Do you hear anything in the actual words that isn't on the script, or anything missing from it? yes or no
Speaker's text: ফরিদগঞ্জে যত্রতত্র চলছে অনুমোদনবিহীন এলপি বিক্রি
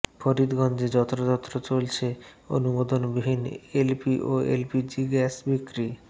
yes